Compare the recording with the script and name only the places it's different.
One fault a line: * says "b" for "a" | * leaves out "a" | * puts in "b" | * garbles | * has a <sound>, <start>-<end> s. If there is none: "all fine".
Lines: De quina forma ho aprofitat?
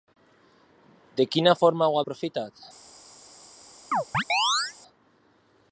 * has a chirp, 3.9-4.7 s